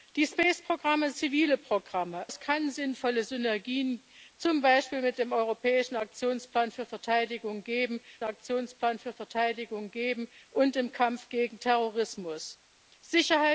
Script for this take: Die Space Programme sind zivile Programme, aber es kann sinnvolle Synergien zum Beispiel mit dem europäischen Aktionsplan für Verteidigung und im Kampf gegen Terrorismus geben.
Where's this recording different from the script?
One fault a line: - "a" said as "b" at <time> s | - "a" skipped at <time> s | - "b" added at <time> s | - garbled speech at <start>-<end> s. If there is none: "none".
- "sind" skipped at 1.1 s
- "aber" skipped at 2.3 s
- "Aktionsplan für Verteidigung" added at 8.2 s